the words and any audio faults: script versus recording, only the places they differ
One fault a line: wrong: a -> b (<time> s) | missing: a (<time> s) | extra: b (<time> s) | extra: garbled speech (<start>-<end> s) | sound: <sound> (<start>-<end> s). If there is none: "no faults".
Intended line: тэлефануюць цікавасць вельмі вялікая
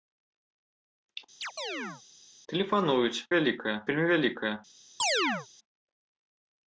sound: chirp (1.4-2.0 s)
wrong: цікавасць -> вялікая (3.4 s)
sound: chirp (5.0-5.5 s)